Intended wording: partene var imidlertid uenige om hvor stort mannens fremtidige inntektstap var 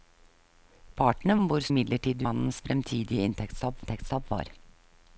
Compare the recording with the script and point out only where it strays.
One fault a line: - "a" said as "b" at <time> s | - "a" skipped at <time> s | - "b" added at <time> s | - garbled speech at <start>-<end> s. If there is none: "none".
- "var imidlertid uenige" skipped at 1.4 s
- "stort" said as "imidlertid" at 1.7 s
- "inntektstap" added at 3.8 s